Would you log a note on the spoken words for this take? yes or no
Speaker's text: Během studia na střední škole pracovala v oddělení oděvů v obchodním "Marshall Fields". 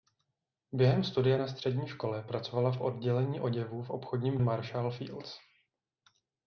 no